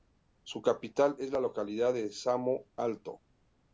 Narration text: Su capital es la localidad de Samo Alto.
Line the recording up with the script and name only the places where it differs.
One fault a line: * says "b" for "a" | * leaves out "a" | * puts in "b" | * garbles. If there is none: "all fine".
all fine